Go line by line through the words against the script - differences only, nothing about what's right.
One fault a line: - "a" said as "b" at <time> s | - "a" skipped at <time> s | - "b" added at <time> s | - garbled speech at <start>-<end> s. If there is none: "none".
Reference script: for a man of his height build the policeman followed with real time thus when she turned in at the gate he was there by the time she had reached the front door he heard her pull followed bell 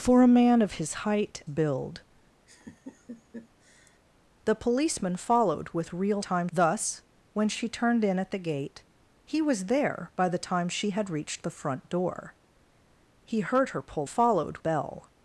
none